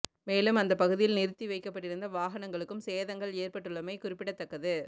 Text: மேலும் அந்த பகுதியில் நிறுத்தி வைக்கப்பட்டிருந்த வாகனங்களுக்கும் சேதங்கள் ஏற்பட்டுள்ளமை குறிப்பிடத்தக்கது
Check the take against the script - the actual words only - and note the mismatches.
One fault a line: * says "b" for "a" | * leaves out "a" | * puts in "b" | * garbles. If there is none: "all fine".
all fine